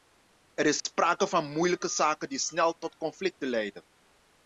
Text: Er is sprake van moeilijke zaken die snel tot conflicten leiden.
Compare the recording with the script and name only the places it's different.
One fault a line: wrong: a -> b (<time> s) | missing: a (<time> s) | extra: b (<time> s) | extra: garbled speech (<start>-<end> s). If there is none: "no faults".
no faults